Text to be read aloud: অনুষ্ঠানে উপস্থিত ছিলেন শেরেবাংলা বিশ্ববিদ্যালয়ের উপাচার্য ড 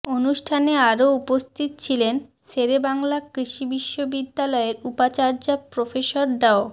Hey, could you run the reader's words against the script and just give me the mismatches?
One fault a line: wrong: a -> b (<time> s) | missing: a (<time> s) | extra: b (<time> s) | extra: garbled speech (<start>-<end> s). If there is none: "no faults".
extra: আরও (0.9 s)
extra: কৃষি (3.3 s)
extra: প্রফেসর (5.7 s)